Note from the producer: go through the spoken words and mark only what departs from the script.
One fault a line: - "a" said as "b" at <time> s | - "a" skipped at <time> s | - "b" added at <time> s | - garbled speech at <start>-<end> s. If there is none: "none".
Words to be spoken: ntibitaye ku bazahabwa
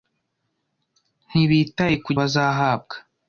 none